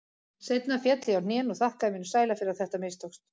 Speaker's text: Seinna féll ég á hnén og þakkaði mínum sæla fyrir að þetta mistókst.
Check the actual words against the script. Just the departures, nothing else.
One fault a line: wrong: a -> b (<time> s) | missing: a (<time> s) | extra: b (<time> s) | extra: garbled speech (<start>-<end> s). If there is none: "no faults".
no faults